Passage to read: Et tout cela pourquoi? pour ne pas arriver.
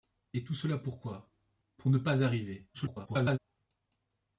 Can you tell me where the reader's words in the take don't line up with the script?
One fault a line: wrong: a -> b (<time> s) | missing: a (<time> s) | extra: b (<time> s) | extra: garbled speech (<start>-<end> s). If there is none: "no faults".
extra: garbled speech (2.7-3.4 s)